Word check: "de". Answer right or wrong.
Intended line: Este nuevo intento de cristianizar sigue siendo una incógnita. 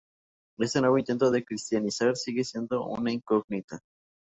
right